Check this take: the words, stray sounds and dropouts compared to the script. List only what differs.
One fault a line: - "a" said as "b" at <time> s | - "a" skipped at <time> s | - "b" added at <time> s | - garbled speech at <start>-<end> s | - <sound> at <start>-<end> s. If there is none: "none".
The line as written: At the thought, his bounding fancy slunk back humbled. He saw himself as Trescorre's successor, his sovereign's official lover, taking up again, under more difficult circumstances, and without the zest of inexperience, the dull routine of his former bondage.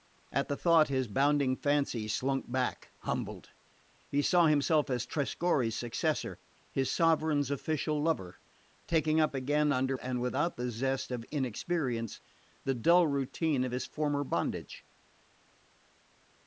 - "more difficult circumstances" skipped at 10.0 s